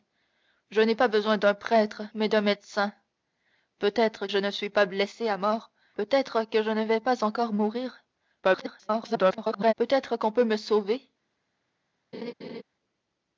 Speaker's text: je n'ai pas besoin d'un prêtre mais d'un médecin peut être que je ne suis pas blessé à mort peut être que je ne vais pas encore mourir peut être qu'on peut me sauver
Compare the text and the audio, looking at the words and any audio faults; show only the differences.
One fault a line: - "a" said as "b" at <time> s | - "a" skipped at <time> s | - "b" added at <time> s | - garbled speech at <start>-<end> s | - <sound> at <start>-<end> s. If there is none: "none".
- "que" skipped at 4.3 s
- garbled speech at 8.4-9.7 s
- laugh at 12.1-12.6 s